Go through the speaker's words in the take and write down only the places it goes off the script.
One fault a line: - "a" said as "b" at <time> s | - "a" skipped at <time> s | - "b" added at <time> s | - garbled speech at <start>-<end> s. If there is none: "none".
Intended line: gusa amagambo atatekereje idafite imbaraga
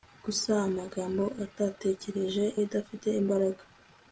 none